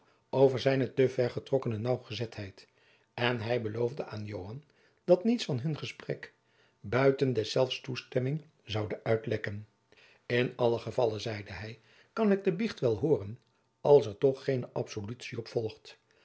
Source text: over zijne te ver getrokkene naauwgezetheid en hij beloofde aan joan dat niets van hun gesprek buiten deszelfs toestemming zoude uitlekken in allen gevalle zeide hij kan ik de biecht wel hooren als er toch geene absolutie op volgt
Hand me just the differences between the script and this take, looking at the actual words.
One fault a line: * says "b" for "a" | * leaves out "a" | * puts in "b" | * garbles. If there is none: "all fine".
all fine